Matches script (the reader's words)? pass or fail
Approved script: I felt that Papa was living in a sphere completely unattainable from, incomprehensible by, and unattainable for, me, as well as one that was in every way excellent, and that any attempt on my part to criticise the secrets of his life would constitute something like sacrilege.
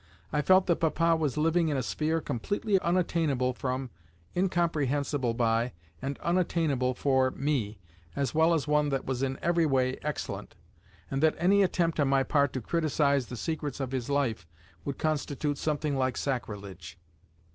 pass